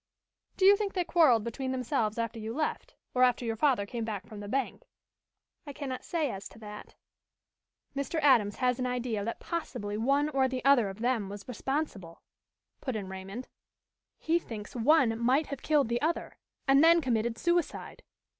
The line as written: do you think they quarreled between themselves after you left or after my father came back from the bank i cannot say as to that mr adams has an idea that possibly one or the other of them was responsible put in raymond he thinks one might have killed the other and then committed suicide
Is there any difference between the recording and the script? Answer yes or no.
yes